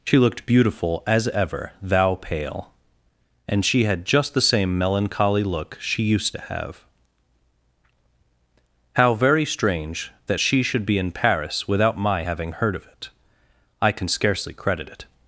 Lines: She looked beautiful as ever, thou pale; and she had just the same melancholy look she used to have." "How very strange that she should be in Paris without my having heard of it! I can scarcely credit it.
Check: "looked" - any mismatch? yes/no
no